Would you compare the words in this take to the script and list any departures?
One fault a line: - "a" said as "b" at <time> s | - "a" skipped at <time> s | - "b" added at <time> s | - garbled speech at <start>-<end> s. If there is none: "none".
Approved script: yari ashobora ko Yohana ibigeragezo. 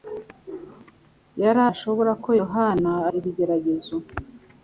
none